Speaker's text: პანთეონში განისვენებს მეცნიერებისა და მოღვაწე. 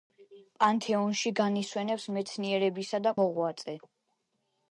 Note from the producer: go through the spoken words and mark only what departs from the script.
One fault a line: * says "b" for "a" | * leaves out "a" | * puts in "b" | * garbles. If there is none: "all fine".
all fine